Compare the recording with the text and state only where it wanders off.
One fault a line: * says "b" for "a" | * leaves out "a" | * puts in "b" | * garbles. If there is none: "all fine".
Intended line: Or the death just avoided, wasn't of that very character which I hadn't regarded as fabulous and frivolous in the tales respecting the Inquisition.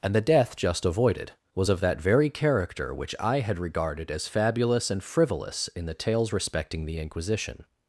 * says "And" for "Or"
* says "was" for "wasn't"
* says "had" for "hadn't"